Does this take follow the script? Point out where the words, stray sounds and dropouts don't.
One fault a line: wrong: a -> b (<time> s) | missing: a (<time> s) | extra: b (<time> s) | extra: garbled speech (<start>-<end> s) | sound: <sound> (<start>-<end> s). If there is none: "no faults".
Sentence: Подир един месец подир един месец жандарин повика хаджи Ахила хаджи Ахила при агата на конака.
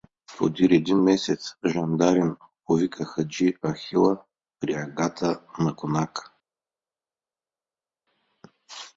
missing: подир един месец (1.6 s)
missing: хаджи Ахила (4.2 s)